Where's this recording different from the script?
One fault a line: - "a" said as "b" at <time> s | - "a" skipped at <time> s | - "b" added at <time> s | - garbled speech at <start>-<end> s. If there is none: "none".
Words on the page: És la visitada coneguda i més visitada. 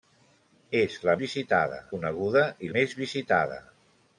none